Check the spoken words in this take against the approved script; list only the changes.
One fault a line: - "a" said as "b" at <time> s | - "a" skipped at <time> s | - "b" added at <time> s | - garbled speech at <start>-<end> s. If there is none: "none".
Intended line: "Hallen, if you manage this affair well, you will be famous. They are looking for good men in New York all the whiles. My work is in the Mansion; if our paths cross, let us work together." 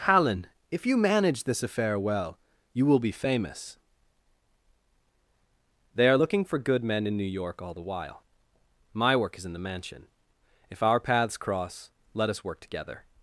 - "whiles" said as "while" at 7.8 s